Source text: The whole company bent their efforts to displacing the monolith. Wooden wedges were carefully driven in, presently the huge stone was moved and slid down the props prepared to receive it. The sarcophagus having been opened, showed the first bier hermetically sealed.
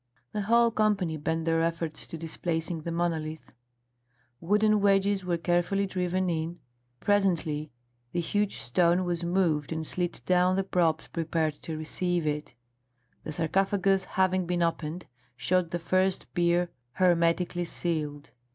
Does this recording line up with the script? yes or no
yes